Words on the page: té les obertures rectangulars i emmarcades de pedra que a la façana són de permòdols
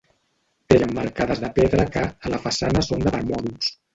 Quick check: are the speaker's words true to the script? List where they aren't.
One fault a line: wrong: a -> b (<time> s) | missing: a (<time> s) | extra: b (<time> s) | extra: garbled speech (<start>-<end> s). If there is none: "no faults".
missing: les obertures rectangulars (0.8 s)